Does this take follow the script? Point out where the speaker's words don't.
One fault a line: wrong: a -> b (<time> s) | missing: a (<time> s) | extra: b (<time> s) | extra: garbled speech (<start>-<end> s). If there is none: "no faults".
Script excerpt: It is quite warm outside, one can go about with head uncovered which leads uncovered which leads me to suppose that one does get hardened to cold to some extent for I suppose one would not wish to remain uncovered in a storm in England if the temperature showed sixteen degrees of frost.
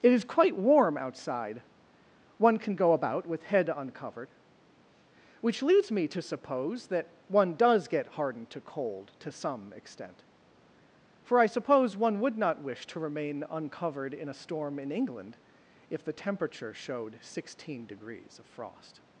missing: uncovered which leads (5.9 s)